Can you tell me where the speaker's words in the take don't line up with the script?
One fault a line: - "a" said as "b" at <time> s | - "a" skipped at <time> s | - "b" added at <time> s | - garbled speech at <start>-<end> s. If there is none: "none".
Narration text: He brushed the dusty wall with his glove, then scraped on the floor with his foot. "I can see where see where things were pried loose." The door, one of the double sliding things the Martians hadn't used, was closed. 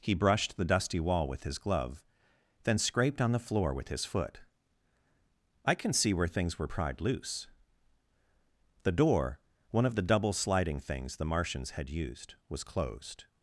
- "see where" skipped at 6.3 s
- "hadn't" said as "had" at 11.7 s